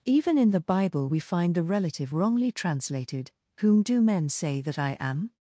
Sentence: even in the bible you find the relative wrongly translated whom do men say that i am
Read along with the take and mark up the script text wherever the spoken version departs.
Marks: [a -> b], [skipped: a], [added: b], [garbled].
even in the bible [you -> we] find the relative wrongly translated whom do men say that i am